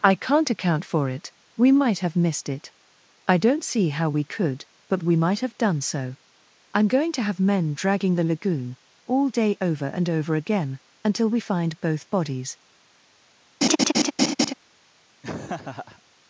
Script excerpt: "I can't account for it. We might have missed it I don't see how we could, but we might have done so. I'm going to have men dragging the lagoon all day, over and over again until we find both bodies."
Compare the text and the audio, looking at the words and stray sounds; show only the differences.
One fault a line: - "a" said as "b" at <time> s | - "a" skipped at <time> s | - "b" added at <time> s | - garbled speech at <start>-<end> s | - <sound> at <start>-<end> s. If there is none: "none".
- laugh at 13.6-14.5 s
- laugh at 15.2-16.0 s